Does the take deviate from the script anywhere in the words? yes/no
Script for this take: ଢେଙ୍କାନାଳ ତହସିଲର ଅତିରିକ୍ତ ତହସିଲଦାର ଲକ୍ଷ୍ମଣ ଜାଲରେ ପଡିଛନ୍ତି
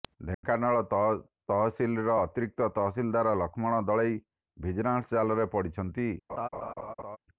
yes